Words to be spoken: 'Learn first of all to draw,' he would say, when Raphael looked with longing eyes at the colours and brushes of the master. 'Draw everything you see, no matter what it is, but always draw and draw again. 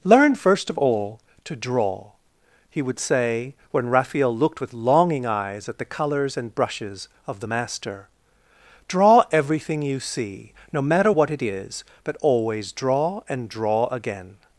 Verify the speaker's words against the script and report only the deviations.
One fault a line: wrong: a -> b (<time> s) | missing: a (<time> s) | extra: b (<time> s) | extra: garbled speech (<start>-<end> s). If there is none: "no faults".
no faults